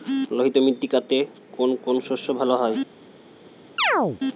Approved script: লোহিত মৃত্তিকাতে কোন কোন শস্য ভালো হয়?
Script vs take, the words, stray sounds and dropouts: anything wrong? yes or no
yes